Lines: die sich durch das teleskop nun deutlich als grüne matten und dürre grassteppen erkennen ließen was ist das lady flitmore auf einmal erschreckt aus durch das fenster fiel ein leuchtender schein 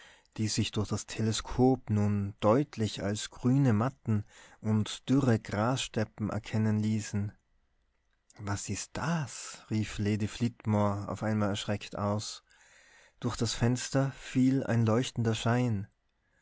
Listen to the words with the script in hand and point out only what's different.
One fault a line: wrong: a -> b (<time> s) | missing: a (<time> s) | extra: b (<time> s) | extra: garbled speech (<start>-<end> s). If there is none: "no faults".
extra: rief (9.7 s)